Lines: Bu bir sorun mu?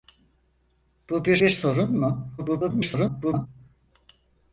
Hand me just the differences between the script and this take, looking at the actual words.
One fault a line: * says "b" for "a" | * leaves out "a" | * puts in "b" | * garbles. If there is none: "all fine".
* puts in "bir"
* garbles